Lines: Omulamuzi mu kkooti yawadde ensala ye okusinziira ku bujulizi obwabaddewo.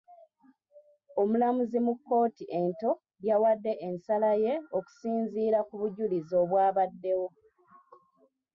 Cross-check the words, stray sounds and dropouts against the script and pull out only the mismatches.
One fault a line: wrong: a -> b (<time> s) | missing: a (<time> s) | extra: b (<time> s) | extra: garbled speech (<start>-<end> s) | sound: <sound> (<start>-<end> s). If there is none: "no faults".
extra: ento (2.6 s)